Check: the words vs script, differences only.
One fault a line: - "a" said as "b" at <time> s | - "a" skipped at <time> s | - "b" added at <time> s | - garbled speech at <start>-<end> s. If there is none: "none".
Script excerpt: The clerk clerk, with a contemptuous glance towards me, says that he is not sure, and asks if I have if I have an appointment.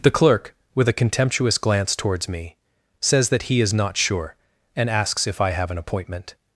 - "clerk" skipped at 0.6 s
- "if I have" skipped at 5.7 s